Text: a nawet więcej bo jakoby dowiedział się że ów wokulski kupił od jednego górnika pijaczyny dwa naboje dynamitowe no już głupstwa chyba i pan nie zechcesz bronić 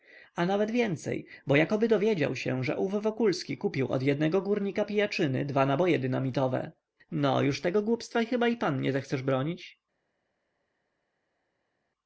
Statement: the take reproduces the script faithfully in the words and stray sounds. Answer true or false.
false